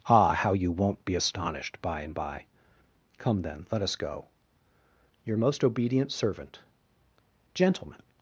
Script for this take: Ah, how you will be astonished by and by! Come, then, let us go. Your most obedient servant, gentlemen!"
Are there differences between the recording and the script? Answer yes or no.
yes